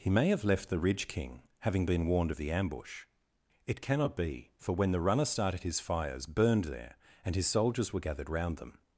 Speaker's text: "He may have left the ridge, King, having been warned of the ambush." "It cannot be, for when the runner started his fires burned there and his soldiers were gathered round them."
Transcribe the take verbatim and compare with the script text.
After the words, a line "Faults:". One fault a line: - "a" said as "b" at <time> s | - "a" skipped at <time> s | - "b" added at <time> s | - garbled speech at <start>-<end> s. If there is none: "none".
"He may have left the ridge, King, having been warned of the ambush." "It cannot be, for when the runner started his fires burned there and his soldiers were gathered round them."
Faults:
none